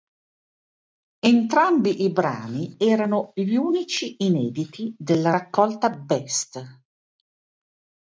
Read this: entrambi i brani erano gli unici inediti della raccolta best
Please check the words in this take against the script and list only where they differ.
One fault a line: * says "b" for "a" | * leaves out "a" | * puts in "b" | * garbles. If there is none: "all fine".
all fine